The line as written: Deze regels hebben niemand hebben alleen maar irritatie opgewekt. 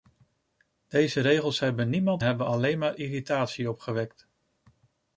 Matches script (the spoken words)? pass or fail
pass